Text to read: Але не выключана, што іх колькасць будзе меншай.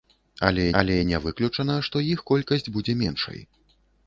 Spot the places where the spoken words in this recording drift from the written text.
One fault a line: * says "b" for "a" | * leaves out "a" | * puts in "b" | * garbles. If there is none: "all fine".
* puts in "але"